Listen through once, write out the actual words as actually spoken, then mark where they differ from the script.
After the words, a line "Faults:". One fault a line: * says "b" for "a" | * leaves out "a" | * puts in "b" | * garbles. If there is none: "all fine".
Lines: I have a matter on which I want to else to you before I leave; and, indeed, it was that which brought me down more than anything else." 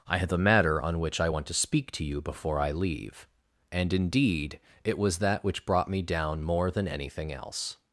I have a matter on which I want to speak to you before I leave; and, indeed, it was that which brought me down more than anything else."
Faults:
* says "speak" for "else"